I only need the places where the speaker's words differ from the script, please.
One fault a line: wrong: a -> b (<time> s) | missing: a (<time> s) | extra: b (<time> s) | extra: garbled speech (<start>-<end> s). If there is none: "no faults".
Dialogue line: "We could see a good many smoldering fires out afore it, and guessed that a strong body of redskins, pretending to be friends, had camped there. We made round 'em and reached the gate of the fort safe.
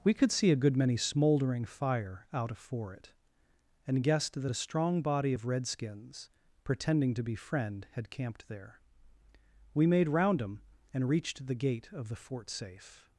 wrong: fires -> fire (1.6 s)
wrong: friends -> friend (7.3 s)